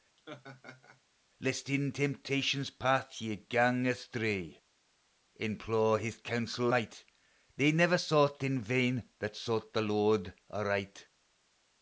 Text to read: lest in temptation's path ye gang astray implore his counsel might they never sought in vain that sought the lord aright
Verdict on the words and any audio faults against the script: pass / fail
fail